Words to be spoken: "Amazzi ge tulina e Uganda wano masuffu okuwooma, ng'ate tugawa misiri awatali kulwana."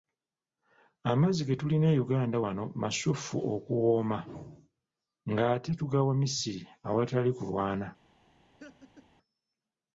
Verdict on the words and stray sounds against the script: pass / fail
fail